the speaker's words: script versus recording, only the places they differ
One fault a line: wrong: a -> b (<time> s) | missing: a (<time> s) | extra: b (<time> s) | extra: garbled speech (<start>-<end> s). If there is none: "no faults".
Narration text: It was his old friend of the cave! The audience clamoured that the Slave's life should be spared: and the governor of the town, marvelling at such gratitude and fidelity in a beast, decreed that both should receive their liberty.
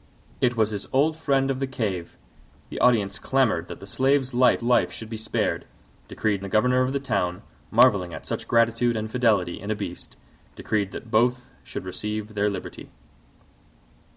extra: life (4.6 s)
wrong: and -> decreed (6.1 s)